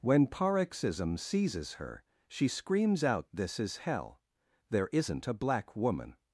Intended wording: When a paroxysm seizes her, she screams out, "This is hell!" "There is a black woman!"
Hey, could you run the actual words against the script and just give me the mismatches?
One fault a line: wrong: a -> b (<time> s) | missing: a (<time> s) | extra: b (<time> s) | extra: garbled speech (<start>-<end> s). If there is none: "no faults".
missing: a (0.3 s)
wrong: is -> isn't (4.9 s)